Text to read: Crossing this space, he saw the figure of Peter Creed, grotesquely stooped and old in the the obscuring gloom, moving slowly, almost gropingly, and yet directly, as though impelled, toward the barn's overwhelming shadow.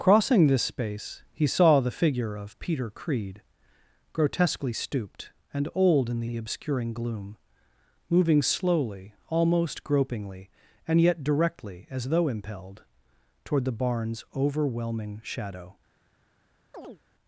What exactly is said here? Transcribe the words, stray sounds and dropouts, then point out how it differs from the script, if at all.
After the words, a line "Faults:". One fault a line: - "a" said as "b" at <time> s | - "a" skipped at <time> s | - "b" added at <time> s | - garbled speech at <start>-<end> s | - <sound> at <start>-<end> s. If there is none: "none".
Crossing this space, he saw the figure of Peter Creed, grotesquely stooped and old in the the obscuring gloom, moving slowly, almost gropingly, and yet directly, as though impelled, toward the barn's overwhelming shadow.
Faults:
- chirp at 16.7-17.0 s